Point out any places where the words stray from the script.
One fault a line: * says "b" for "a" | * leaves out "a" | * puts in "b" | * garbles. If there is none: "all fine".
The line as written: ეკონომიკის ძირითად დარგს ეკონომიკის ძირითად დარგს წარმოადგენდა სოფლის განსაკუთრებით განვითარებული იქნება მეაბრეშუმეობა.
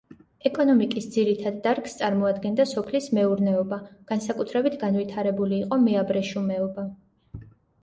* leaves out "ეკონომიკის ძირითად დარგს"
* puts in "მეურნეობა"
* says "იყო" for "იქნება"